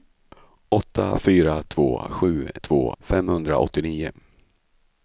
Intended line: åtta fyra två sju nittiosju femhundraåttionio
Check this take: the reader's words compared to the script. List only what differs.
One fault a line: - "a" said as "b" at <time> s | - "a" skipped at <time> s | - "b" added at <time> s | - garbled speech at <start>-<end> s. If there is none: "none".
- "nittiosju" said as "två" at 2.6 s